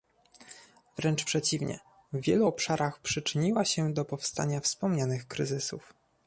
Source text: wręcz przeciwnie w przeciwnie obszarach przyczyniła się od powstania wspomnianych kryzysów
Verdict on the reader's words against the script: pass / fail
fail